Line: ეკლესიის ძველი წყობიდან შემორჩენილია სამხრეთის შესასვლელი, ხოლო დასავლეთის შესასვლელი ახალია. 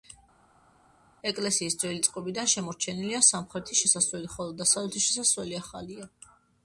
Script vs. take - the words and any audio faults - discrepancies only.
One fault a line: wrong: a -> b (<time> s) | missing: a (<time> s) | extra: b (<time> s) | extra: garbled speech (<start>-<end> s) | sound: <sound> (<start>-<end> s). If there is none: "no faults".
no faults